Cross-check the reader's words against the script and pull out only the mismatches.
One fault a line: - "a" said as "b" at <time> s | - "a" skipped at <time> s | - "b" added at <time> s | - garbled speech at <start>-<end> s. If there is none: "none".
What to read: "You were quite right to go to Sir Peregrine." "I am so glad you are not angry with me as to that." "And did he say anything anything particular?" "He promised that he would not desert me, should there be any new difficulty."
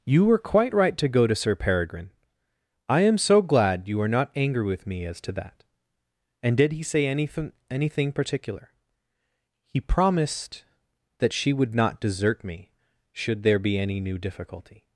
- "he" said as "she" at 11.3 s